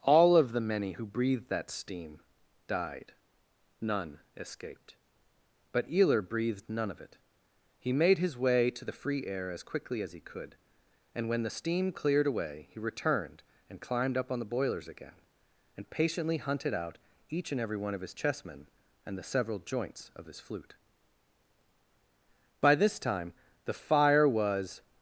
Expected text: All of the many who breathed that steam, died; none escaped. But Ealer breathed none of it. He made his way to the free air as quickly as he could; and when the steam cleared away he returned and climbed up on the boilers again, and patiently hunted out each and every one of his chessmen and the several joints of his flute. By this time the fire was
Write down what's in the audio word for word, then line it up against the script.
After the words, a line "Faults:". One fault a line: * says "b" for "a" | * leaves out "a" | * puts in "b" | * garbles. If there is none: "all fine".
All of the many who breathed that steam, died; none escaped. But Ealer breathed none of it. He made his way to the free air as quickly as he could; and when the steam cleared away he returned and climbed up on the boilers again, and patiently hunted out each and every one of his chessmen and the several joints of his flute. By this time the fire was
Faults:
all fine